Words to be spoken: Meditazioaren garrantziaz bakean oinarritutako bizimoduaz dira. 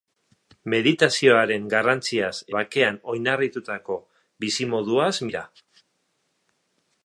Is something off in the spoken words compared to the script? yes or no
no